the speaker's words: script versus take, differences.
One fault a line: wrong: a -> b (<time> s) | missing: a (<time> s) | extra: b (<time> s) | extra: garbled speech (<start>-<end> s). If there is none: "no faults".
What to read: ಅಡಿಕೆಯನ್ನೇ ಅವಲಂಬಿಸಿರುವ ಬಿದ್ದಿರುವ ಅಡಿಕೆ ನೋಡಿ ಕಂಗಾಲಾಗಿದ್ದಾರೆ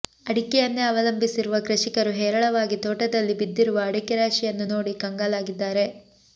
extra: ಕೃಷಿಕರು ಹೇರಳವಾಗಿ ತೋಟದಲ್ಲಿ (1.7 s)
extra: ರಾಶಿಯನ್ನು (4.2 s)